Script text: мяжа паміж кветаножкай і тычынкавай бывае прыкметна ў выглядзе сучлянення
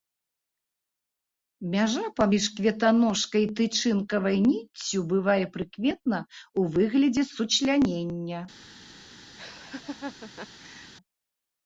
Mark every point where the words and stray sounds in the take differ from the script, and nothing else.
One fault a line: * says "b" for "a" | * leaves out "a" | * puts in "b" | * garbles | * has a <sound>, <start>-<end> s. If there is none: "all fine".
* puts in "ніццю"
* has a laugh, 9.4-10.9 s